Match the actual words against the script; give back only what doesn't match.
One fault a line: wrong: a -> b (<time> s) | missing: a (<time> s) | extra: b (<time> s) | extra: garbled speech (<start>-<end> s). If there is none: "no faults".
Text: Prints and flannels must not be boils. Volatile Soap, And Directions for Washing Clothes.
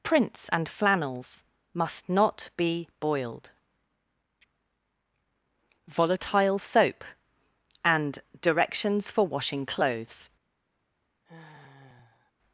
wrong: boils -> boiled (3.0 s)